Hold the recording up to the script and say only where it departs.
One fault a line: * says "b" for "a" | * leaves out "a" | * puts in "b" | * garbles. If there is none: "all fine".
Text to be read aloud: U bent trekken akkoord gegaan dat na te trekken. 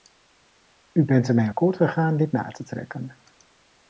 * says "ermee" for "trekken"
* says "dit" for "dat"